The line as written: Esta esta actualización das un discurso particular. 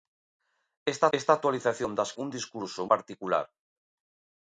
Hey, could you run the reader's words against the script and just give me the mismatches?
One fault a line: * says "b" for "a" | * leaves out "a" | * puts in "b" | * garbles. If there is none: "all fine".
all fine